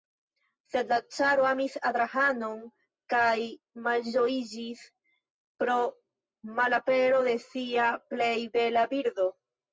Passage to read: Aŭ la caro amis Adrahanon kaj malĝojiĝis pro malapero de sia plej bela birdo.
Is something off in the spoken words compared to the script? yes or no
yes